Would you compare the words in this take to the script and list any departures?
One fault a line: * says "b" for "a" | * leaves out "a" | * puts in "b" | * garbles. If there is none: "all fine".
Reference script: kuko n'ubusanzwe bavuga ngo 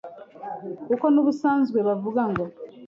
all fine